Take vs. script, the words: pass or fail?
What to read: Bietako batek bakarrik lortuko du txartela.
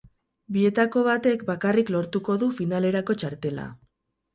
fail